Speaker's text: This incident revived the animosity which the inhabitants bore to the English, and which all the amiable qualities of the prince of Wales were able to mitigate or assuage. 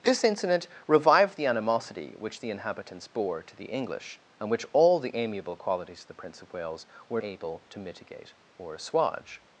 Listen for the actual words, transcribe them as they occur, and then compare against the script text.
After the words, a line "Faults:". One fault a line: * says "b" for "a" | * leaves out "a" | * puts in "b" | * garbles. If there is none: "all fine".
This incident revived the animosity which the inhabitants bore to the English, and which all the amiable qualities of the prince of Wales were able to mitigate or assuage.
Faults:
all fine